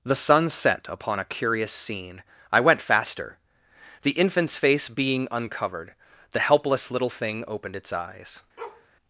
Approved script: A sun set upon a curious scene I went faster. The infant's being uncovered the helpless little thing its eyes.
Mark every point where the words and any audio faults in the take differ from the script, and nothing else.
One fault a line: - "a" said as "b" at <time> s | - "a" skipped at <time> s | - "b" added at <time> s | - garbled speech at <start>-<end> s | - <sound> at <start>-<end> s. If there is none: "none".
- "A" said as "The" at 0.0 s
- "face" added at 4.6 s
- "opened" added at 7.5 s
- bark at 8.6-8.9 s